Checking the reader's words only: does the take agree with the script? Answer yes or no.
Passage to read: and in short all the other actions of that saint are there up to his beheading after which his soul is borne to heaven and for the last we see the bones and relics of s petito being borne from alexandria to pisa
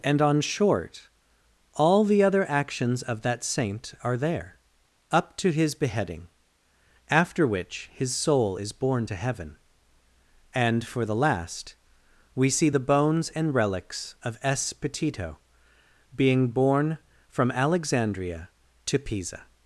no